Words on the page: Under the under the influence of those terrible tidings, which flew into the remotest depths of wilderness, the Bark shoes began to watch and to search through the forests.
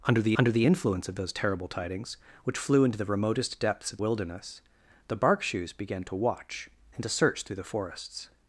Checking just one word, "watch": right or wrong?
right